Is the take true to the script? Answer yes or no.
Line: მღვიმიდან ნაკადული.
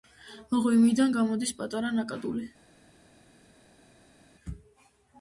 no